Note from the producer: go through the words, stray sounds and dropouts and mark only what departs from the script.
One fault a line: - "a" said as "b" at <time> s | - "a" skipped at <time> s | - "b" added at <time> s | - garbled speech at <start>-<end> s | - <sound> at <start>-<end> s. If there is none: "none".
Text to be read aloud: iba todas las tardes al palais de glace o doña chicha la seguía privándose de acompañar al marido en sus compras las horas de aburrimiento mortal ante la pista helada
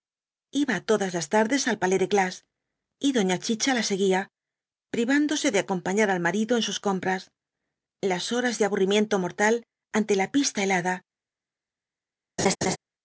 - "o" said as "y" at 3.0 s
- laugh at 12.4-12.8 s